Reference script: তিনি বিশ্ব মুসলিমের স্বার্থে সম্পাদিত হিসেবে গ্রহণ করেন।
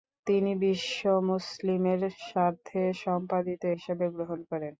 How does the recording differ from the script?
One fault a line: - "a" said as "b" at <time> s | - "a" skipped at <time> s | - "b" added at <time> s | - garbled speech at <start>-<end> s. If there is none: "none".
none